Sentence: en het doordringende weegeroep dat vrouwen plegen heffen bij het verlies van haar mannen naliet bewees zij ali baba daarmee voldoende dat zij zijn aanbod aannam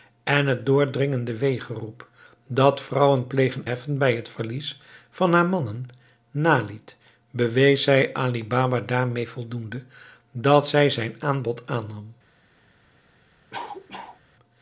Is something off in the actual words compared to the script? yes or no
no